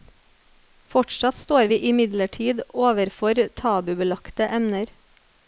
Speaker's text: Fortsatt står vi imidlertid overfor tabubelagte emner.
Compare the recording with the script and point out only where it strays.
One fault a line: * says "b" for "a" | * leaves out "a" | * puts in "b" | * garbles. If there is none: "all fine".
all fine